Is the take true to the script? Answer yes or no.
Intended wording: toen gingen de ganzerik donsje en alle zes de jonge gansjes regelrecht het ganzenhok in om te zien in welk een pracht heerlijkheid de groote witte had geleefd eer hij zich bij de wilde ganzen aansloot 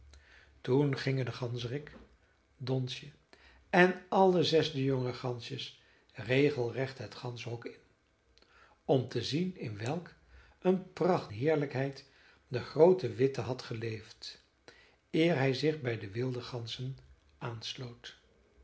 yes